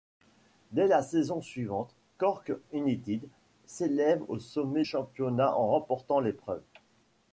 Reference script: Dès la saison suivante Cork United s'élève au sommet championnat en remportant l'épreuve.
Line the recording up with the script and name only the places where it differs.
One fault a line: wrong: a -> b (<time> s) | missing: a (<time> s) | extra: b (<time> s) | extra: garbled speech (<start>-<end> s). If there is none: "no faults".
no faults